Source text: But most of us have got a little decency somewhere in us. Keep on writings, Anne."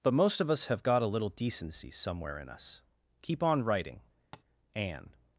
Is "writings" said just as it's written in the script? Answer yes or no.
no